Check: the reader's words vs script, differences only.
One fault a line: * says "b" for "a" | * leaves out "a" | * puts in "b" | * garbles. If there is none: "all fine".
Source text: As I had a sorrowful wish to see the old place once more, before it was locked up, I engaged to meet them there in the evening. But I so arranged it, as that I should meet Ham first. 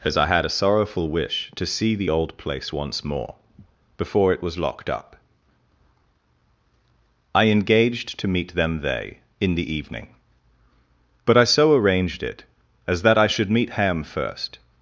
* says "they" for "there"